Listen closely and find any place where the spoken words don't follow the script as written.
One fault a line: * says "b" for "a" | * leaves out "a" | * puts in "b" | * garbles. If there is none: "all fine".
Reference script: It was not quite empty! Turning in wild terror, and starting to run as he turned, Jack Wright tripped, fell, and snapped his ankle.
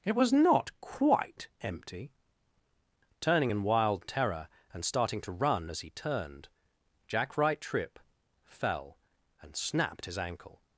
* says "tripp" for "tripped"